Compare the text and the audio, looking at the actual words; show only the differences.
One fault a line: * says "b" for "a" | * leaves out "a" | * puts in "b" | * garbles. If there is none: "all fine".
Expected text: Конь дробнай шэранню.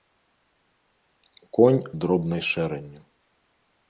all fine